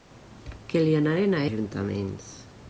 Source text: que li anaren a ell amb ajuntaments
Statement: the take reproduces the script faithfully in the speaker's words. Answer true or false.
false